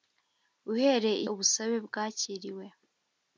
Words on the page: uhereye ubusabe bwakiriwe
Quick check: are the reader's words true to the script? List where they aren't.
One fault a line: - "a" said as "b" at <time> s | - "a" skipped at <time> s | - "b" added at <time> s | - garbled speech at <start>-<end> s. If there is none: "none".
none